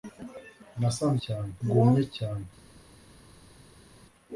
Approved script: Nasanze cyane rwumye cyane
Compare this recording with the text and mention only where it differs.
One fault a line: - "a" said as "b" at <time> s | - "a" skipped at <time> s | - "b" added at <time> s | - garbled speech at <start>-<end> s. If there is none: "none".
none